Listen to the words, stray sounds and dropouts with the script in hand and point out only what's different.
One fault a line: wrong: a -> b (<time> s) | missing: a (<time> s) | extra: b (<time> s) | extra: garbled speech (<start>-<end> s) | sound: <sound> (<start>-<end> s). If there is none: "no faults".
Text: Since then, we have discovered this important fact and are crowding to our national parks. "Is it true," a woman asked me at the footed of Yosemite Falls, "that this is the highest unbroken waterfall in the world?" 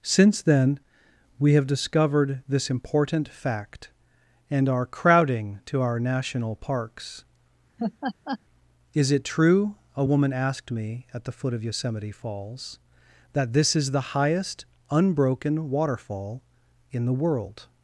sound: laugh (7.8-8.4 s)
wrong: footed -> foot (11.3 s)